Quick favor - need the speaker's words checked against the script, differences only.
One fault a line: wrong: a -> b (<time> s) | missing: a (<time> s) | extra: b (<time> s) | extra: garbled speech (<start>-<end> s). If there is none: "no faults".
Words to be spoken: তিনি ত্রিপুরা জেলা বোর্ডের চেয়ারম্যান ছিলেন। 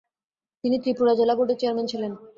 no faults